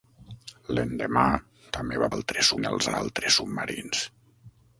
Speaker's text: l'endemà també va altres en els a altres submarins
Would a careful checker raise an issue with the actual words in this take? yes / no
no